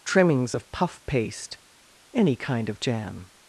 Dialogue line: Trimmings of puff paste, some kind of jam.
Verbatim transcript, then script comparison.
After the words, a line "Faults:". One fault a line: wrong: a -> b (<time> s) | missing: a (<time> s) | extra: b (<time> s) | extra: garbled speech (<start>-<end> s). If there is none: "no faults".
Trimmings of puff paste, any kind of jam.
Faults:
wrong: some -> any (2.1 s)